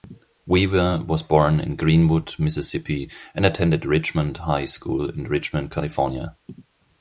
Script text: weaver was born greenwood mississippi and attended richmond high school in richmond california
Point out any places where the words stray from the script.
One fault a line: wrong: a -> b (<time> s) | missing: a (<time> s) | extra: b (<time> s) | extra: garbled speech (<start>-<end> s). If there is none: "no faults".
extra: in (1.6 s)